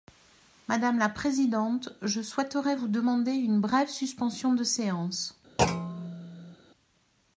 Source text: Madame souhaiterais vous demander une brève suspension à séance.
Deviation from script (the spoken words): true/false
true